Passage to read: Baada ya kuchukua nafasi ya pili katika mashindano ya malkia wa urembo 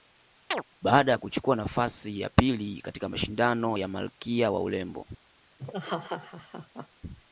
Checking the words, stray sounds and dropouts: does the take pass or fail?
fail